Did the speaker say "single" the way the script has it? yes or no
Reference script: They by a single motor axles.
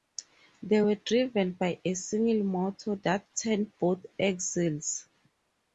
yes